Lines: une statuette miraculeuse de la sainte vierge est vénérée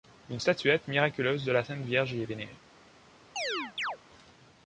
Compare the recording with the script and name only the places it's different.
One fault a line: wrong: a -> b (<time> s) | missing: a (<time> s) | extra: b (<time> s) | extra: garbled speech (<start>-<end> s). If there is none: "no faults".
extra: y (2.1 s)